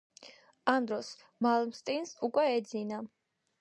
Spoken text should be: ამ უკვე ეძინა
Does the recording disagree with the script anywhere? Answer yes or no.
yes